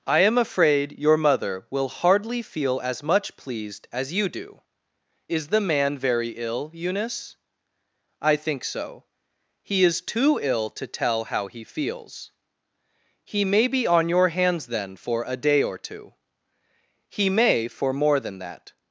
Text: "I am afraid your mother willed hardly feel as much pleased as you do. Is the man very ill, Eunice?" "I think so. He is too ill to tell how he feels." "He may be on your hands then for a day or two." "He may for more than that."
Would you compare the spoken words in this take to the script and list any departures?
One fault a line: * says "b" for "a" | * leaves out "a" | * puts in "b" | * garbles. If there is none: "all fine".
* says "will" for "willed"